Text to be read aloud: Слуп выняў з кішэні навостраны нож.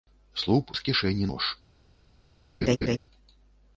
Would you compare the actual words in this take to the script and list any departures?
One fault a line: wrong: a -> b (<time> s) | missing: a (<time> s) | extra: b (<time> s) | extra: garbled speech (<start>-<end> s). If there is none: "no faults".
missing: выняў (0.7 s)
missing: навостраны (1.3 s)